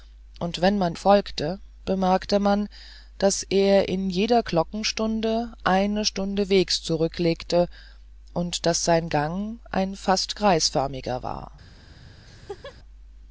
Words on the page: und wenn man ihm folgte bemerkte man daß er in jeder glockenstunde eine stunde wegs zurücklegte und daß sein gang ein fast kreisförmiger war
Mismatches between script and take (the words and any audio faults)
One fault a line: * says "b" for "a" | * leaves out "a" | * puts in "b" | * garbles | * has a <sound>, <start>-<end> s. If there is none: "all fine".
* leaves out "ihm"
* has a laugh, 12.2-12.8 s